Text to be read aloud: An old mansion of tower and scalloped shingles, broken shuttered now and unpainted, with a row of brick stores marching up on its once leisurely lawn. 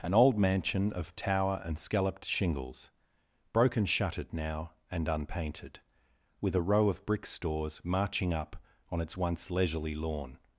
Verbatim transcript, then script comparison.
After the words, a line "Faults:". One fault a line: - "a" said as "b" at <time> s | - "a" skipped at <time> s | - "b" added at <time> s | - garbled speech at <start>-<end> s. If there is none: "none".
An old mansion of tower and scalloped shingles, broken shuttered now and unpainted, with a row of brick stores marching up on its once leisurely lawn.
Faults:
none